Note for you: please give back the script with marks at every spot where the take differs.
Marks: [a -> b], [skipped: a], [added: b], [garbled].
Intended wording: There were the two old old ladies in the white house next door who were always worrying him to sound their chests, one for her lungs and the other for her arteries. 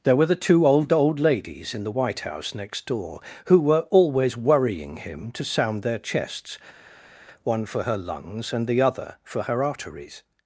There were the two old old ladies in the white house next door who were always worrying him to sound their chests, one for her lungs and the other for her arteries.